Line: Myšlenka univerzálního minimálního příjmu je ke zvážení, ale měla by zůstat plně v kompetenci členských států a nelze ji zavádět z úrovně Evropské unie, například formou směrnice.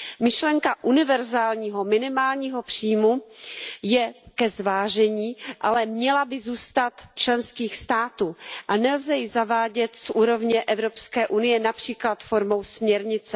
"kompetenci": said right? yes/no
no